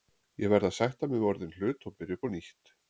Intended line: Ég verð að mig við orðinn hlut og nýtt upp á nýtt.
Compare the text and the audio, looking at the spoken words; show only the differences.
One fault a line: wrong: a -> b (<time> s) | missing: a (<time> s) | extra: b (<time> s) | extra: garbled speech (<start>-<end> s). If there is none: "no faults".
extra: sætta (0.8 s)
wrong: nýtt -> byrja (2.0 s)